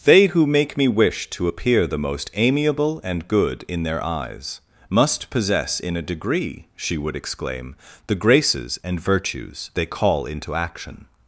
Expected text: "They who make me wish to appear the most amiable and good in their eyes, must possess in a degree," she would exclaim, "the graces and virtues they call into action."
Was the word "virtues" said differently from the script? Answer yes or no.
no